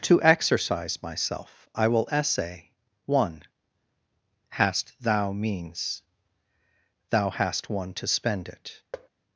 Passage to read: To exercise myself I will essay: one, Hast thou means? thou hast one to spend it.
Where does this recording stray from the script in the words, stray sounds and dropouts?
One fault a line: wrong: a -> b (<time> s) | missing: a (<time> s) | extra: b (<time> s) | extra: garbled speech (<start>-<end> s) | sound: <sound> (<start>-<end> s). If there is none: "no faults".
sound: thud (8.9-9.1 s)